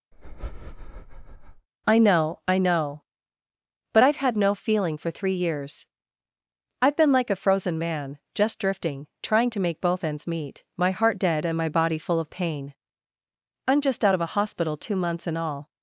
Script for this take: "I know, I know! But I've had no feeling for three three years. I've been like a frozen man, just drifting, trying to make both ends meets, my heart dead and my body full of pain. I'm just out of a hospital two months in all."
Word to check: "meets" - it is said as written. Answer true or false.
false